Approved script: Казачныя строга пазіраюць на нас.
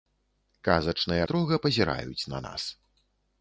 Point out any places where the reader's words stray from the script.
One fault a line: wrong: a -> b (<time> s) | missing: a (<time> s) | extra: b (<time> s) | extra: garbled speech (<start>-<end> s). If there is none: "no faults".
no faults